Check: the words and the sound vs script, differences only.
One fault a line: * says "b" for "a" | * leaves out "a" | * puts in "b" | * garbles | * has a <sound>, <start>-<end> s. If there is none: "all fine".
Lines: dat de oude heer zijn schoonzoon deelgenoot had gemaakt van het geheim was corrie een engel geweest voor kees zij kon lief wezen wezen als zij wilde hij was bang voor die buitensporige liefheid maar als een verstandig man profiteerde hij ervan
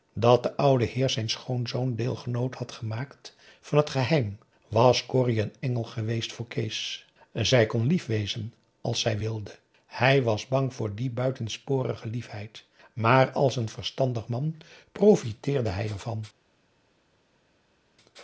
* leaves out "wezen"